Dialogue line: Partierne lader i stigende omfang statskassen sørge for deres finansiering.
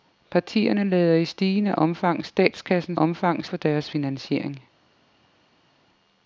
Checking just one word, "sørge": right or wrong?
wrong